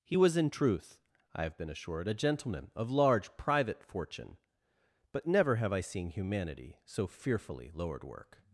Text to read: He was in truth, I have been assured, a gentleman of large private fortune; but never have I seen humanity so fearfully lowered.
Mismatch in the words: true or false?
true